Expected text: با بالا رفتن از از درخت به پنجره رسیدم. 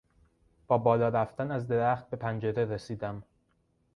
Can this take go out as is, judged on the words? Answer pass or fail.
fail